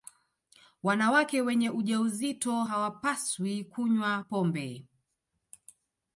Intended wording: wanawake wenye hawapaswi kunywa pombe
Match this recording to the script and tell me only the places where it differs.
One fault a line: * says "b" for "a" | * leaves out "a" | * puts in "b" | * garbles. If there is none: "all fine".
* puts in "ujauzito"